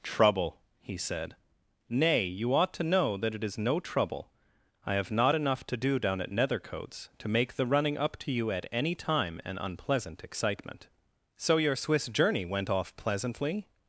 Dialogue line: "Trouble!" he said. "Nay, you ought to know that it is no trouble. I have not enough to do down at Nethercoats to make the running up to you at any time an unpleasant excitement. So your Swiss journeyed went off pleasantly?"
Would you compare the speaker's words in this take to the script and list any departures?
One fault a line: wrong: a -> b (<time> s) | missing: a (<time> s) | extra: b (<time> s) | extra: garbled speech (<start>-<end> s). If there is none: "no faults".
wrong: journeyed -> journey (12.1 s)